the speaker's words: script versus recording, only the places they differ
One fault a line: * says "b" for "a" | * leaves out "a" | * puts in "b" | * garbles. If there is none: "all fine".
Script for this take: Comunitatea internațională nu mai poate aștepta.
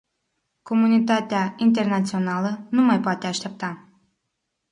all fine